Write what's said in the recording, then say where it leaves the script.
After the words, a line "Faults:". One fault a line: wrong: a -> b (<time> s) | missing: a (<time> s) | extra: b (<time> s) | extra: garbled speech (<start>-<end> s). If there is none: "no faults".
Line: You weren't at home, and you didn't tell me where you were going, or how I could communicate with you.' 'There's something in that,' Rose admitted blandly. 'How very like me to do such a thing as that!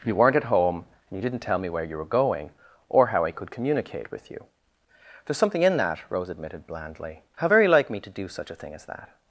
You weren't at home, and you didn't tell me where you were going, or how I could communicate with you.' 'There's something in that,' Rose admitted blandly. 'How very like me to do such a thing as that!
Faults:
no faults